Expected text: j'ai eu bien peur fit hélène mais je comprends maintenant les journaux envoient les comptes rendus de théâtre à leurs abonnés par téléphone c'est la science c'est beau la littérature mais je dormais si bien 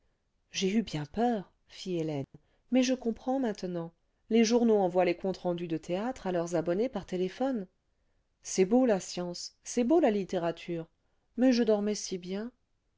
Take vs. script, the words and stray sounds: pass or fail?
fail